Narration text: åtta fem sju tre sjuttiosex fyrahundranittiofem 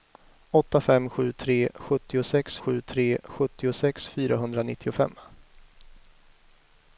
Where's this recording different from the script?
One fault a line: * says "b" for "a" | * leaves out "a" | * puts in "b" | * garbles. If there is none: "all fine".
* puts in "sju tre sjuttiosex"